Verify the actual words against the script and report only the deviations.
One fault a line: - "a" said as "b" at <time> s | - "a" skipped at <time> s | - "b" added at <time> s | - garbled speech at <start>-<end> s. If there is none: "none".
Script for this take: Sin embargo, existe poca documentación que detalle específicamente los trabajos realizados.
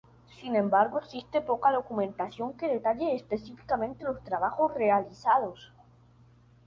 none